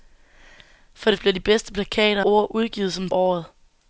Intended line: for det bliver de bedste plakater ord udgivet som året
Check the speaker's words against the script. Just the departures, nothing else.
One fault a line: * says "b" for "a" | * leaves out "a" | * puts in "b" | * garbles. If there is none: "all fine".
all fine